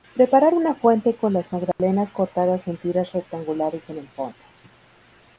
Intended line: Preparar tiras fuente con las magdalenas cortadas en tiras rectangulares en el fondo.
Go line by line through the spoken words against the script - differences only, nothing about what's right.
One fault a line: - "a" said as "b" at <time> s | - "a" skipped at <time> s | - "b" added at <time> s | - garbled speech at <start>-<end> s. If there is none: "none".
- "tiras" said as "una" at 0.5 s